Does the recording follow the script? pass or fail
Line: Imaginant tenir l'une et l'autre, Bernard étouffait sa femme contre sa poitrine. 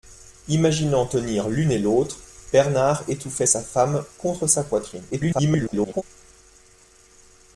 fail